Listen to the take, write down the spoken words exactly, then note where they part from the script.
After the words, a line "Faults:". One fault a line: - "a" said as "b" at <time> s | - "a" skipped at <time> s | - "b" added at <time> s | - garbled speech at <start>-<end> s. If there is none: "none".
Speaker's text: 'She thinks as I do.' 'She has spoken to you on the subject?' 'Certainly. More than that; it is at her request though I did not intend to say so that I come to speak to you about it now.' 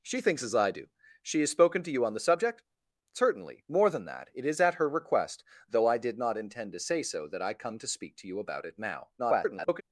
'She thinks as I do.' 'She has spoken to you on the subject?' 'Certainly. More than that; it is at her request though I did not intend to say so that I come to speak to you about it now.' [garbled]
Faults:
- garbled speech at 9.2-9.8 s